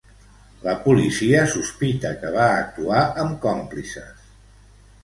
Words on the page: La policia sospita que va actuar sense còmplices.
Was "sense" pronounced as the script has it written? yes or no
no